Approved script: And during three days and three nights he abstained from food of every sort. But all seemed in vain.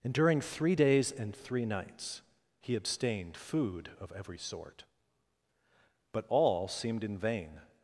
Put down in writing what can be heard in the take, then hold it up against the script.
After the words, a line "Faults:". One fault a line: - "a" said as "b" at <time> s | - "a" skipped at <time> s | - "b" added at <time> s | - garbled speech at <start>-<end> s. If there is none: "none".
And during three days and three nights he abstained food of every sort. But all seemed in vain.
Faults:
- "from" skipped at 3.4 s